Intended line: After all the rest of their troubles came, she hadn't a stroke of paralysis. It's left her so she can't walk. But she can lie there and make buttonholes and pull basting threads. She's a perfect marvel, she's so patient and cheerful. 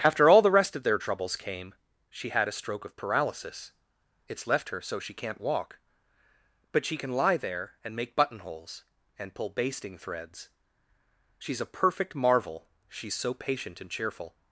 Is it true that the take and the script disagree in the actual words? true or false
true